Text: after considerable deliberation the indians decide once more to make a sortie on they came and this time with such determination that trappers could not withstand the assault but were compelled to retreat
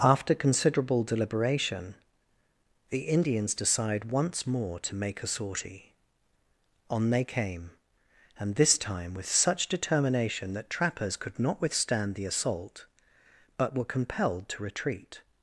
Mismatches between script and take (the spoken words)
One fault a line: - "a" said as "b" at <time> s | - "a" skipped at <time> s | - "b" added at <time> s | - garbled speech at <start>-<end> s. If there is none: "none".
none